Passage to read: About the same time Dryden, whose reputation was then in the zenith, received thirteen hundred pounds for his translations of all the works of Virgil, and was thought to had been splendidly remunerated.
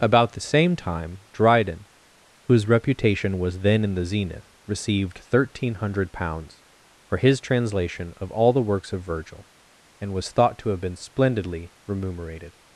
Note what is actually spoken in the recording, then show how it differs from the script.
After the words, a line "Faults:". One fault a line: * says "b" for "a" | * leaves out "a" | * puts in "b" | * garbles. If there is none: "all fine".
About the same time Dryden, whose reputation was then in the zenith, received thirteen hundred pounds for his translation of all the works of Virgil, and was thought to have been splendidly remunerated.
Faults:
* says "translation" for "translations"
* says "have" for "had"